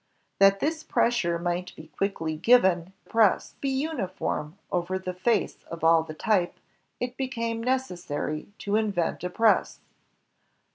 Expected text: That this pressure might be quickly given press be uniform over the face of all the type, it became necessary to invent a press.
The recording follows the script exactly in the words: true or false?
true